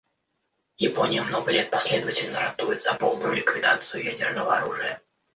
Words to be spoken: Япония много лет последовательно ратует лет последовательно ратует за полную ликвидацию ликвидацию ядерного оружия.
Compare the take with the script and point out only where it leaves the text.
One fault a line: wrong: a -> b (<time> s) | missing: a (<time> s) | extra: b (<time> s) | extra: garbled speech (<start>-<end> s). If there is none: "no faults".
missing: лет последовательно ратует (2.8 s)
missing: ликвидацию (4.0 s)